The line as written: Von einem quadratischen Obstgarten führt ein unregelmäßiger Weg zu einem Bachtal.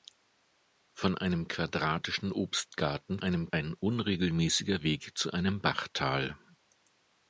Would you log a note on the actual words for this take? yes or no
yes